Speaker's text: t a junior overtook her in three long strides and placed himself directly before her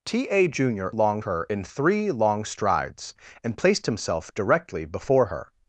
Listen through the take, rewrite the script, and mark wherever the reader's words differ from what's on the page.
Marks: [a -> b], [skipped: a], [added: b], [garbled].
t a junior [overtook -> long] her in three long strides and placed himself directly before her